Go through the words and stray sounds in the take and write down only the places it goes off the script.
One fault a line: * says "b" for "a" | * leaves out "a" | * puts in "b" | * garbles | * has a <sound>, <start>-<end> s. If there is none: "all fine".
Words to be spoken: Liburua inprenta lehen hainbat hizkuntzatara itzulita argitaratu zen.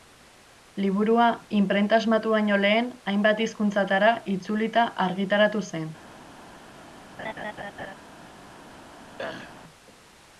* puts in "asmatu baino"
* has a laugh, 7.2-8.0 s
* has a throat clearing, 9.2-9.6 s